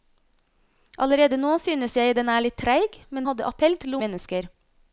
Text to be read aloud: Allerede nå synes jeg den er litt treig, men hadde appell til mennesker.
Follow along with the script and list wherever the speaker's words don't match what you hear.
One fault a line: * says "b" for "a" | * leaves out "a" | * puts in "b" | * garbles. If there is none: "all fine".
all fine